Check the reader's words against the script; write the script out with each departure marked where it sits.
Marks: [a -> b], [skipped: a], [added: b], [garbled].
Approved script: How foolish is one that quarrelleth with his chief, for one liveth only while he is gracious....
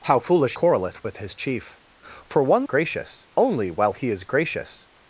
How foolish [skipped: is one that] quarrelleth with his chief, for one [liveth -> gracious] only while he is gracious....